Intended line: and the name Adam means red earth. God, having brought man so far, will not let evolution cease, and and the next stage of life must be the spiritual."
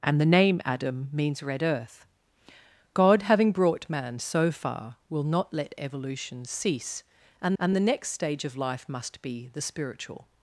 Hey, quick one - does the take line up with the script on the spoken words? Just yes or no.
yes